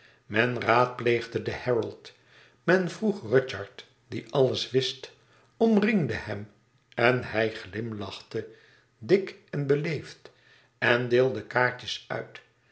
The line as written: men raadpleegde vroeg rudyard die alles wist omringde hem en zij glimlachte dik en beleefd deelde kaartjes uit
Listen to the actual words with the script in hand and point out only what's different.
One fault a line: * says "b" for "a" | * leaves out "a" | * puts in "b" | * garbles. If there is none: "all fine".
* puts in "den herald men"
* says "hij" for "zij"
* puts in "en"